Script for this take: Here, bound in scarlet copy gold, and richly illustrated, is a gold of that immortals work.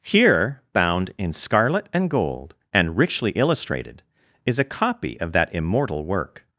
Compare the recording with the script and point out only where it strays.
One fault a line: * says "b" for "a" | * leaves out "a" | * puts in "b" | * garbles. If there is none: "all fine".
* says "and" for "copy"
* says "copy" for "gold"
* says "immortal" for "immortals"